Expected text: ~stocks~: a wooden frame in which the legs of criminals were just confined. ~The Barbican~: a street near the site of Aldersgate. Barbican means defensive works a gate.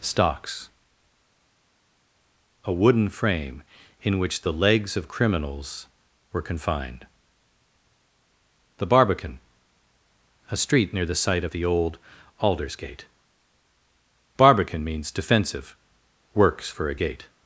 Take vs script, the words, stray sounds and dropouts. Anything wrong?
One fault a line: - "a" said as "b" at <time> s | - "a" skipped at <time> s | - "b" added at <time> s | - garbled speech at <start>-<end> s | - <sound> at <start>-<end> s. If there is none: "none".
- "just" skipped at 6.4 s
- "the old" added at 11.5 s
- "for" added at 16.7 s